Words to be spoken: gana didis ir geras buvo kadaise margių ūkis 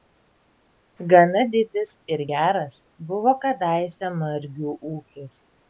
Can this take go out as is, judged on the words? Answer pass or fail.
pass